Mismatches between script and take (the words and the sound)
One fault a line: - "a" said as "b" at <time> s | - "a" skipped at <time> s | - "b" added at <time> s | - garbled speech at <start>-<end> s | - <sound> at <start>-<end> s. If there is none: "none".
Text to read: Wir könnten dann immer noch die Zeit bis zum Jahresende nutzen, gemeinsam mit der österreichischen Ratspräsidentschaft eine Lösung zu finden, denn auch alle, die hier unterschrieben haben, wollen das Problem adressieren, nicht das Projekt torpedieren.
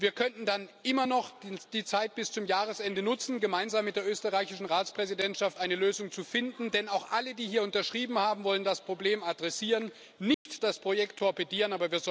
- dropout at 10.3-10.5 s